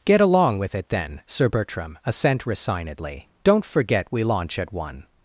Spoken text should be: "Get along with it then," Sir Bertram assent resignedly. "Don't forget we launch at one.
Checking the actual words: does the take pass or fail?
pass